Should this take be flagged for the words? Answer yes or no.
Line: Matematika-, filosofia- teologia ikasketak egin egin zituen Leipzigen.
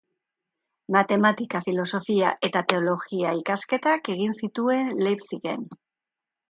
yes